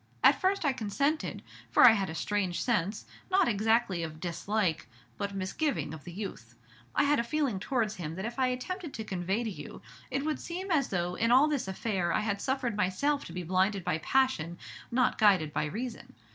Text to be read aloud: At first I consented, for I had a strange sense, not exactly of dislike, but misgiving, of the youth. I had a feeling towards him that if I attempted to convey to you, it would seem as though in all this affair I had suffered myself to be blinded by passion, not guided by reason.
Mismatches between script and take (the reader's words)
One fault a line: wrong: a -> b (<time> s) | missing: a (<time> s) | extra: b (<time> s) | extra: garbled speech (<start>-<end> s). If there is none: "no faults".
no faults